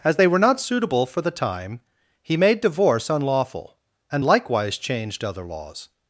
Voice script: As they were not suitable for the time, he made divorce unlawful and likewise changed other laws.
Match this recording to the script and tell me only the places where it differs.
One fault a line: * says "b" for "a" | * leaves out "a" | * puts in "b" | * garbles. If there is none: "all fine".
all fine